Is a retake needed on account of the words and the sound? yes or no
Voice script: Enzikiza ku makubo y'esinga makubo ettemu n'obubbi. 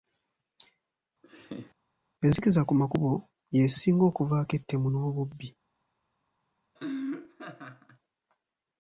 yes